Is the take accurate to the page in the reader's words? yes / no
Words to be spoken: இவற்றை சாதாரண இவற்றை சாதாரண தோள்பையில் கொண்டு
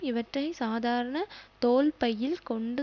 no